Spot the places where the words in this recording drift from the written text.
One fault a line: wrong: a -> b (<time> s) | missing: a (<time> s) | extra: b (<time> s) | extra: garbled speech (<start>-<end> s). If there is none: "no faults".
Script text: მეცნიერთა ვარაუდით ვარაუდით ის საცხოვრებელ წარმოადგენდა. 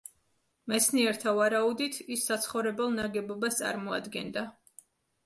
missing: ვარაუდით (2.0 s)
extra: ნაგებობას (3.0 s)